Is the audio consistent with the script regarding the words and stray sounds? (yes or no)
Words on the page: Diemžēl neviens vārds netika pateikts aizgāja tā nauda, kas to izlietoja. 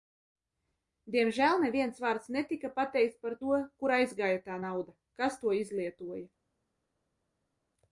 no